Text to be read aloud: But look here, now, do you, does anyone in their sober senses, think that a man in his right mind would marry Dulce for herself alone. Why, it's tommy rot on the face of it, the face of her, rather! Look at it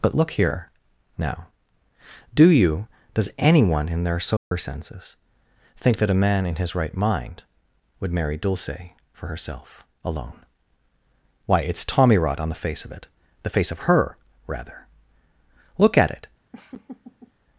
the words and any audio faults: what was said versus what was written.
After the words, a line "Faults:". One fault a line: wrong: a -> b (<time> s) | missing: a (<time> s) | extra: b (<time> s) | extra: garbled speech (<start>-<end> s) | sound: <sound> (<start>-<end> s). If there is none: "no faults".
But look here, now, do you, does anyone in their sober senses, think that a man in his right mind would marry Dulce for herself alone. Why, it's tommy rot on the face of it, the face of her, rather! Look at it
Faults:
sound: dropout (4.4-4.5 s)
sound: laugh (16.5-17.3 s)